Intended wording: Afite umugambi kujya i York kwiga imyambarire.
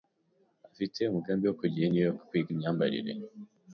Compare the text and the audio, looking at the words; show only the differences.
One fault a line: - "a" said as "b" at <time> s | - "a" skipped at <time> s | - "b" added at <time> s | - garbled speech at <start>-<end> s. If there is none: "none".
- "wo" added at 1.4 s
- "New" added at 1.9 s